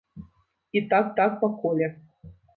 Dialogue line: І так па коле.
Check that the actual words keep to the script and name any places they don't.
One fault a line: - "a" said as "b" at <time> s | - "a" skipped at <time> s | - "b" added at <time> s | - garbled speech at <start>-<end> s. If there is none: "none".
- "так" added at 1.2 s